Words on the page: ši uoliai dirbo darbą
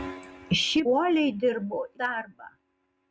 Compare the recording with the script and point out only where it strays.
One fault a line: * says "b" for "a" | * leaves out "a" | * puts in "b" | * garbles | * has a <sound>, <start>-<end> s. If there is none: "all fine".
all fine